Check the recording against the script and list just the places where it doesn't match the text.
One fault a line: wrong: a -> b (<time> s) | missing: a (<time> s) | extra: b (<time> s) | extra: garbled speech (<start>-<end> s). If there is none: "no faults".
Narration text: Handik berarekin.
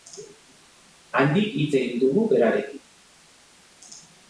extra: hitz egin dugu (1.6 s)